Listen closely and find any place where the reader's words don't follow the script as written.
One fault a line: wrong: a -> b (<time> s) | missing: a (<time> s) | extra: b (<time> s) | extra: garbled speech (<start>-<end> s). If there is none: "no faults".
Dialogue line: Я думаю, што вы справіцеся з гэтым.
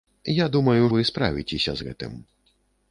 missing: што (0.9 s)